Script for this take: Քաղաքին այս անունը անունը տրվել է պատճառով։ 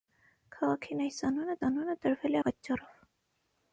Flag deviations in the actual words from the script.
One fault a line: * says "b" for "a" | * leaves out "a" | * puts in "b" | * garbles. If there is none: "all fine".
all fine